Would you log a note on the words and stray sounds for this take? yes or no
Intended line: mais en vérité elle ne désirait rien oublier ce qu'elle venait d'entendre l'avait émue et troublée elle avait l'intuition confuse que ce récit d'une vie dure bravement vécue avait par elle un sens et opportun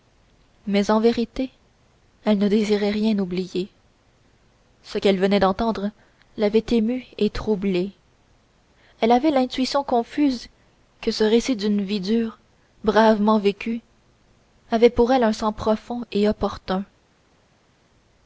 yes